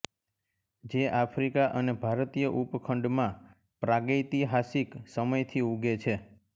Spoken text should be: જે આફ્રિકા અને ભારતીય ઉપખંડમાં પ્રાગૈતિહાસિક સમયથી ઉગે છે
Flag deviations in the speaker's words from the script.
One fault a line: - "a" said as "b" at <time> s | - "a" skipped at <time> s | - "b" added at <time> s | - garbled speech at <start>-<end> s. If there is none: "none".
none